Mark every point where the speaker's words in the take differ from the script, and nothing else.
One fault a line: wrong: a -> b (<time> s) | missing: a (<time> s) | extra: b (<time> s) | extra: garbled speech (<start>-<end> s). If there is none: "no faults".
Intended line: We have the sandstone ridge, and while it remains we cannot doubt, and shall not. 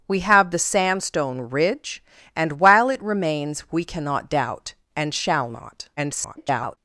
extra: garbled speech (6.0-6.8 s)